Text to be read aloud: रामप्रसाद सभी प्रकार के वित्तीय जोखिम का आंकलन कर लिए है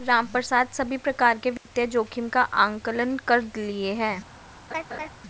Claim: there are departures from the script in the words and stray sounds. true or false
true